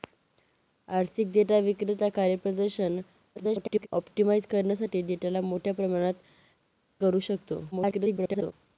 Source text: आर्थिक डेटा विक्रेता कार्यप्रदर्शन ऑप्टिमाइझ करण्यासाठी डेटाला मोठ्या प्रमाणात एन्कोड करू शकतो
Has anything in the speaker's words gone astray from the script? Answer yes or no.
yes